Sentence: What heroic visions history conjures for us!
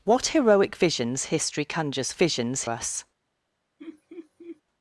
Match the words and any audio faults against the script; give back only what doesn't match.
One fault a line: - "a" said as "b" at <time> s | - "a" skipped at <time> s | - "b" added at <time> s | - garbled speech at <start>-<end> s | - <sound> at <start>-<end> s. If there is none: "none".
- "for" said as "visions" at 2.1 s
- laugh at 3.8-4.6 s